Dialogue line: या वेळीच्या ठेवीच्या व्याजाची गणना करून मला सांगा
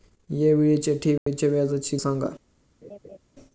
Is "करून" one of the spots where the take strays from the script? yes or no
yes